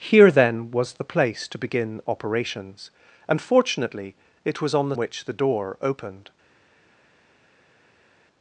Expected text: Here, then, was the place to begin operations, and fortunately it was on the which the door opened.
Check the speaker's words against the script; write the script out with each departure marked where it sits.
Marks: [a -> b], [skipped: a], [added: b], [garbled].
Here, then, was the place to begin operations, and fortunately it was on the which the door opened.